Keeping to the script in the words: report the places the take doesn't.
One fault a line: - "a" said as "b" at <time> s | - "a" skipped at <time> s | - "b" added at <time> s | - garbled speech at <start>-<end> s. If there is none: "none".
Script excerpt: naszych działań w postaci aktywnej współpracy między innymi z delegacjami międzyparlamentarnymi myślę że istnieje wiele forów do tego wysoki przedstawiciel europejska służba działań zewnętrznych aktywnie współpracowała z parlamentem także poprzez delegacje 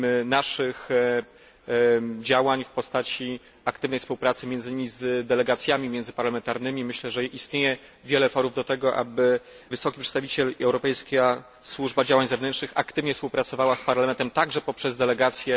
none